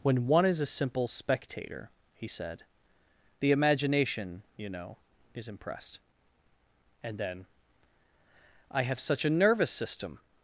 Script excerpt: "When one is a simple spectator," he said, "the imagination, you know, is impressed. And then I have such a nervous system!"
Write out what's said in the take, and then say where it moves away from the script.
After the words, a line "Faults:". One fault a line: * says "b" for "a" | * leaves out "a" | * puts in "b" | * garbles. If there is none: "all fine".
"When one is a simple spectator," he said, "the imagination, you know, is impressed. And then I have such a nervous system!"
Faults:
all fine